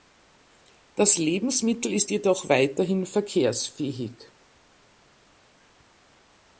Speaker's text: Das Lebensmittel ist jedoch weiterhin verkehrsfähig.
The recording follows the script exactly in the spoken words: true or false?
true